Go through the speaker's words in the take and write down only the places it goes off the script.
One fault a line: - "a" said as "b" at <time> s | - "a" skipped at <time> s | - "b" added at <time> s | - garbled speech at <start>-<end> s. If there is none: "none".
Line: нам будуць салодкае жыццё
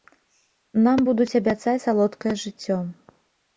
- "абяцаць" added at 1.4 s